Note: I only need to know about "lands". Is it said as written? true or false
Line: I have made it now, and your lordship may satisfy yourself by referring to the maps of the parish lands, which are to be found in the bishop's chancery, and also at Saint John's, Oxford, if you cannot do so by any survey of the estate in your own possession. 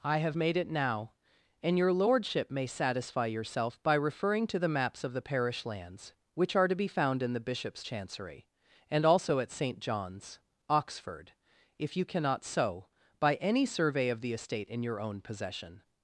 true